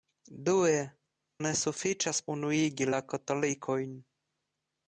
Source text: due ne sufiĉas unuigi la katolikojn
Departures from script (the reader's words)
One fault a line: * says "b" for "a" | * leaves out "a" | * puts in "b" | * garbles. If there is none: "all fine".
all fine